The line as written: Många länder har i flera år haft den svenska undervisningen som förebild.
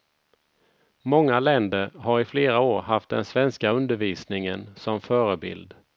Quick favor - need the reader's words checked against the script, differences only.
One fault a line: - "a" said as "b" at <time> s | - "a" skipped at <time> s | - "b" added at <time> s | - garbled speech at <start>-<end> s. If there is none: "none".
none